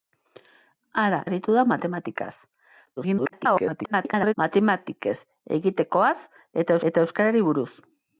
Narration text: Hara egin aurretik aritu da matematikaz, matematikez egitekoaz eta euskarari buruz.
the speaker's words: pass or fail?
fail